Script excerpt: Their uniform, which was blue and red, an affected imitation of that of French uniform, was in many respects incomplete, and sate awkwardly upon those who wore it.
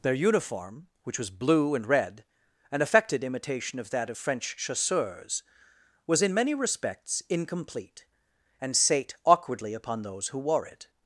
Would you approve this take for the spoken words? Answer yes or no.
no